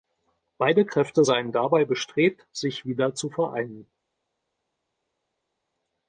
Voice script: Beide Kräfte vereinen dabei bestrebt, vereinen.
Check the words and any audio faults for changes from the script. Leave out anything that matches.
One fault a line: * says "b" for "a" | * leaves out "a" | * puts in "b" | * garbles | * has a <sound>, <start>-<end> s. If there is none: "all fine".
* says "seien" for "vereinen"
* puts in "sich wieder zu"